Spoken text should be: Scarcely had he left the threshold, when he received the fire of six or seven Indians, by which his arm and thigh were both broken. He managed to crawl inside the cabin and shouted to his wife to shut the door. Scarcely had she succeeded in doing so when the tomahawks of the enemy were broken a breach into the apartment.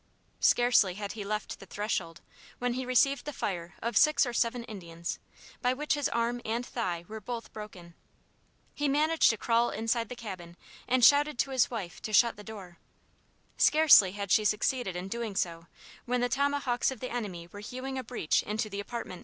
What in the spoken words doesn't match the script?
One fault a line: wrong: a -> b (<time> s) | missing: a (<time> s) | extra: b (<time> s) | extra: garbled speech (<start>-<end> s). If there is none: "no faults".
wrong: broken -> hewing (17.6 s)